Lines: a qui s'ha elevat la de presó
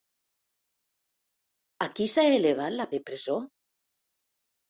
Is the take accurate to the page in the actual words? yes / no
yes